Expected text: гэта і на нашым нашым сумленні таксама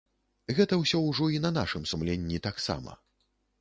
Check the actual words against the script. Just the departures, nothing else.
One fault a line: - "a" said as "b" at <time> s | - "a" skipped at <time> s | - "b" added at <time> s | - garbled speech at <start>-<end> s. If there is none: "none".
- "ўсё ўжо" added at 0.8 s
- "нашым" skipped at 1.9 s